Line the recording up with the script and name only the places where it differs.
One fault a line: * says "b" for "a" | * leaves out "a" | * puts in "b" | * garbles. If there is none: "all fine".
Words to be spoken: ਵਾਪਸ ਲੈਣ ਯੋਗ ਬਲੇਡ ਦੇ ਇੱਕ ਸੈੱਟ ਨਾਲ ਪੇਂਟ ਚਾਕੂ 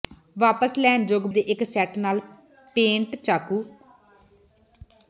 * leaves out "ਬਲੇਡ"